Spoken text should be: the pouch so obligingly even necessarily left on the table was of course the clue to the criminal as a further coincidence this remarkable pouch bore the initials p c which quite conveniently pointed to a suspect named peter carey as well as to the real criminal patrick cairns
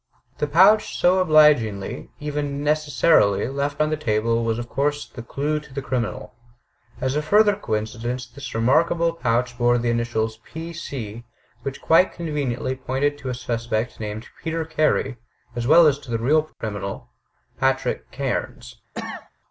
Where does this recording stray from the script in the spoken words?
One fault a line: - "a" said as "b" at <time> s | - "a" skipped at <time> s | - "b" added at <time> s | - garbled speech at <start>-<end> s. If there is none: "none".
none